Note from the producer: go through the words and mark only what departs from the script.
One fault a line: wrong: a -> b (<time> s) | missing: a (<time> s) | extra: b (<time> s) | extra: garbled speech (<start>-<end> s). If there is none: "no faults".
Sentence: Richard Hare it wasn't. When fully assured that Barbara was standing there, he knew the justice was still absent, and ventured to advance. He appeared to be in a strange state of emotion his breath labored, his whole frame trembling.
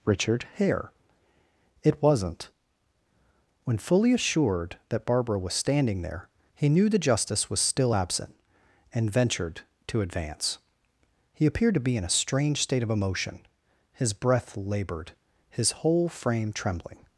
no faults